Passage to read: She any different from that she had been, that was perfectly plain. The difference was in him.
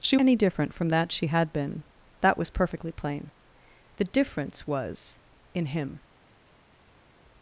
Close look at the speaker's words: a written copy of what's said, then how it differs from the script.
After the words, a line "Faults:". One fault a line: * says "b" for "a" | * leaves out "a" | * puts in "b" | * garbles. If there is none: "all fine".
She any different from that she had been, that was perfectly plain. The difference was in him.
Faults:
all fine